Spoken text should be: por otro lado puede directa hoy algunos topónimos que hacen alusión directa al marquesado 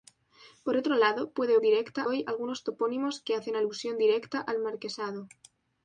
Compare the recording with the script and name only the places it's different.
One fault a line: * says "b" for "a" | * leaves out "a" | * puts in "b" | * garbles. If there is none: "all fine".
all fine